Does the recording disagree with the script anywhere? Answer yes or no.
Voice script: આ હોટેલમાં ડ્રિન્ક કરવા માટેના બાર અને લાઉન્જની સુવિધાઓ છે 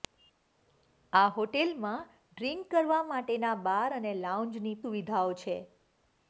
no